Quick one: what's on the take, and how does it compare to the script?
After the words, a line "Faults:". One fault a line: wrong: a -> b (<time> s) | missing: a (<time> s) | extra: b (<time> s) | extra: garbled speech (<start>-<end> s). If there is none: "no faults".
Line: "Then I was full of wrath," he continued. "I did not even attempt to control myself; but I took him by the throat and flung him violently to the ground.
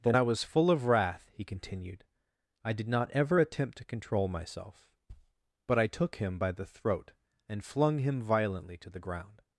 "Then I was full of wrath," he continued. "I did not ever attempt to control myself; but I took him by the throat and flung him violently to the ground.
Faults:
wrong: even -> ever (3.1 s)